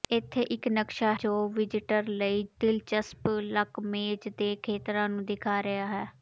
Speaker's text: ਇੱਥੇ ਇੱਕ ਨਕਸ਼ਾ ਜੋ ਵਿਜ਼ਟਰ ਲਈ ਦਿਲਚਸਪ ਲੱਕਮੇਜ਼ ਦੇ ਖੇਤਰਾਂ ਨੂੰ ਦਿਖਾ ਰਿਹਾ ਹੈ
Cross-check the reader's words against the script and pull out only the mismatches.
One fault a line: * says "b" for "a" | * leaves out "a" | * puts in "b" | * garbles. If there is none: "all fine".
all fine